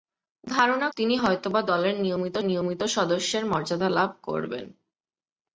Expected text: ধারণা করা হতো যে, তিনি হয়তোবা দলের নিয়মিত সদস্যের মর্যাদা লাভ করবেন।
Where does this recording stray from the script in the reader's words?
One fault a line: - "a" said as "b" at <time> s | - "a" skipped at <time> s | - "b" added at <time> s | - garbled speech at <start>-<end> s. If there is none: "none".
- "করা হতো যে" skipped at 0.9 s
- "নিয়মিত" added at 2.4 s